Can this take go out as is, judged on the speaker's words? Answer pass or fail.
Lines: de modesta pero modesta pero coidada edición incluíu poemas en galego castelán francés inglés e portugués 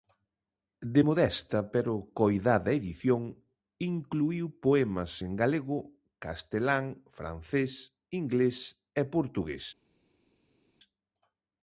fail